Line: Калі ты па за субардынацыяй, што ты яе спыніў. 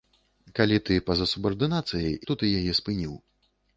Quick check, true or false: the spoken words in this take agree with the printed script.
true